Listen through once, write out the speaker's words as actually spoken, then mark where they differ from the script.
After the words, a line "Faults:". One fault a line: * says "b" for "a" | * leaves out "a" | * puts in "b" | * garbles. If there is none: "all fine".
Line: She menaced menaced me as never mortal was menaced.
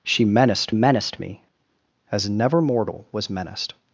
She menaced menaced me as never mortal was menaced.
Faults:
all fine